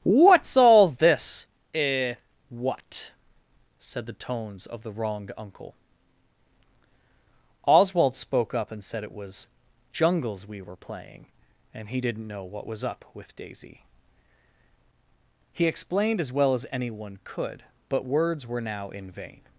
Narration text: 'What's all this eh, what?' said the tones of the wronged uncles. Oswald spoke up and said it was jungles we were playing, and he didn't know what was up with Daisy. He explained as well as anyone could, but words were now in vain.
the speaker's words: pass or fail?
fail